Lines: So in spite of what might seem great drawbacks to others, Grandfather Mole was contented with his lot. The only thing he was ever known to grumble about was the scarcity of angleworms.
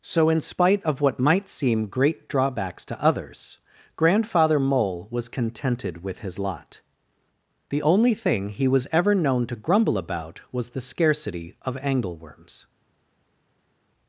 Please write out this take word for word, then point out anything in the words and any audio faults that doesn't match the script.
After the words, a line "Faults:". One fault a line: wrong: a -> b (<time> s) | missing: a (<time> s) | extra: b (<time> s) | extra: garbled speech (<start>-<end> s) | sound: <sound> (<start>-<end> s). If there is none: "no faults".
So in spite of what might seem great drawbacks to others, Grandfather Mole was contented with his lot. The only thing he was ever known to grumble about was the scarcity of angleworms.
Faults:
no faults